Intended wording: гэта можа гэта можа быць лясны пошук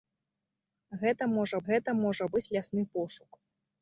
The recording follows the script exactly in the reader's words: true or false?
true